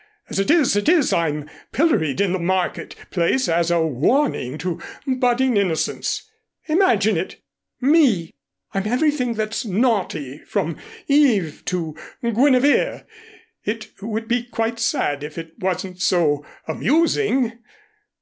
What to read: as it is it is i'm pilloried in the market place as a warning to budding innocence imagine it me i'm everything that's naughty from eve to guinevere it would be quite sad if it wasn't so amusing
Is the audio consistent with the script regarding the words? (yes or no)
yes